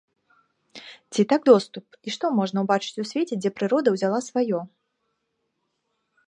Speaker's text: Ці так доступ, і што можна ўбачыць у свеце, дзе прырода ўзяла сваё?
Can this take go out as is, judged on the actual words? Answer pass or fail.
pass